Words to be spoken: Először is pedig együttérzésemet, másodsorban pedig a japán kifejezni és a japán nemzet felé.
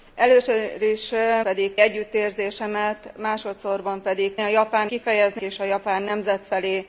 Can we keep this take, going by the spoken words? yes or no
yes